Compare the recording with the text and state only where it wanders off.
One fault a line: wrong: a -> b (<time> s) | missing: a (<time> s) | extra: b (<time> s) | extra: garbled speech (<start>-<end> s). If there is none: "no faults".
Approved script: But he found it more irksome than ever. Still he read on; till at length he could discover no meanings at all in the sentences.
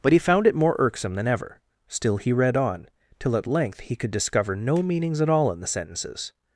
no faults